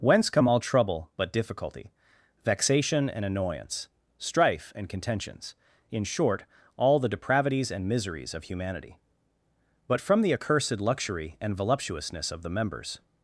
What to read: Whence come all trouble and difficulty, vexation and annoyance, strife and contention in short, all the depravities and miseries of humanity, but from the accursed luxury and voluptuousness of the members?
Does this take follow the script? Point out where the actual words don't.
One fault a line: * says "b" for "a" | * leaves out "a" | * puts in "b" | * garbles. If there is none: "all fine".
* says "but" for "and"
* says "contentions" for "contention"